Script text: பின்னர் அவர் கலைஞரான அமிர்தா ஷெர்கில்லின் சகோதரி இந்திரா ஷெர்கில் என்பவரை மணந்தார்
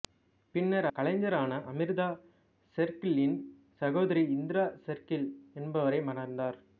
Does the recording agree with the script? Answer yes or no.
no